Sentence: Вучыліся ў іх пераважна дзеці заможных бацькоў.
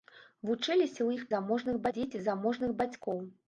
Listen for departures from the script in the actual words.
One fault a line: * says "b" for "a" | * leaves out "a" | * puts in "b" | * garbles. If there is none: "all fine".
* says "заможных" for "пераважна"